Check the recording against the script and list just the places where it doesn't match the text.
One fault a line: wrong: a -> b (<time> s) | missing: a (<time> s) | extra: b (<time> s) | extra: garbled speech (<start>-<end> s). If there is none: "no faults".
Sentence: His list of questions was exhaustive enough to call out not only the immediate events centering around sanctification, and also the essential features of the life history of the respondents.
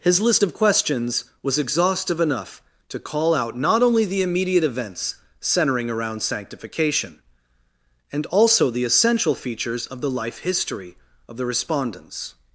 no faults